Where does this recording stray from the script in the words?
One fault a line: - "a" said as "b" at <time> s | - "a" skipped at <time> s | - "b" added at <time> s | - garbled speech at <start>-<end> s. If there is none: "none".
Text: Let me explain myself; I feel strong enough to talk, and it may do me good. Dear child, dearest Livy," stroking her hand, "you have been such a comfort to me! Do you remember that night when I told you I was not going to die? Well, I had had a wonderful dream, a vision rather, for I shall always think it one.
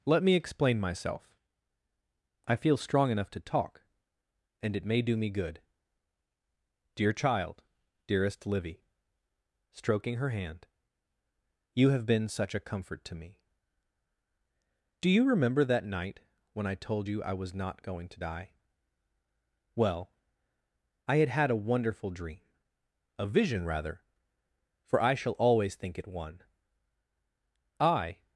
- "I" added at 27.8 s